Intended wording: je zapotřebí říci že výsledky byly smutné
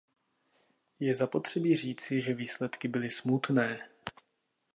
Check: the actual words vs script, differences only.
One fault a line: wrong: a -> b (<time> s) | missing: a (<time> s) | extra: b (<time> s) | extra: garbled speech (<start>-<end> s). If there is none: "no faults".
no faults